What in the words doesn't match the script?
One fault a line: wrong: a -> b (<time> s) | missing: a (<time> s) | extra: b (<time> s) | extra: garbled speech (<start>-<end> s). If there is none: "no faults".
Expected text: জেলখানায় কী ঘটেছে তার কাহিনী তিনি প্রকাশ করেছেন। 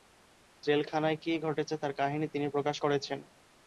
no faults